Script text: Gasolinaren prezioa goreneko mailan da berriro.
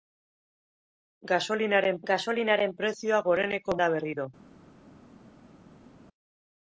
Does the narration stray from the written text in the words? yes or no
yes